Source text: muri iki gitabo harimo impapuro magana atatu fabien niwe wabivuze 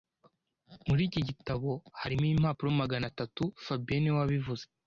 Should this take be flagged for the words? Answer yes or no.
no